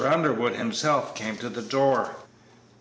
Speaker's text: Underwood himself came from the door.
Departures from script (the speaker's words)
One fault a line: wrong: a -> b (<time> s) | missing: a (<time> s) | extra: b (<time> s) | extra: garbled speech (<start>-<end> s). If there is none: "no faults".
wrong: from -> to (1.4 s)